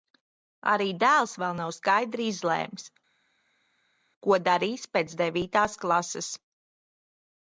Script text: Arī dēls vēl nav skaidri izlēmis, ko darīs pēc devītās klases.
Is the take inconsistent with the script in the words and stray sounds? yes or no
no